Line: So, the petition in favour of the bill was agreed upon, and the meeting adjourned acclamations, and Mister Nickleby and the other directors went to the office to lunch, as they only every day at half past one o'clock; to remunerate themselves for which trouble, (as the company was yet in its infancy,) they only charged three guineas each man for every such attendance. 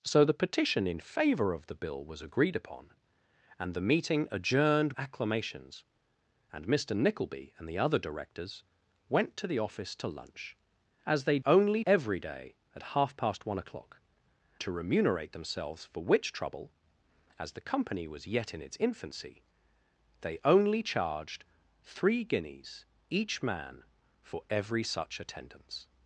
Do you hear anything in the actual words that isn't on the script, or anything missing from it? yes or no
no